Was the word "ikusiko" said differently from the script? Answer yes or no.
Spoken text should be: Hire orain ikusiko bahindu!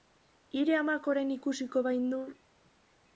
no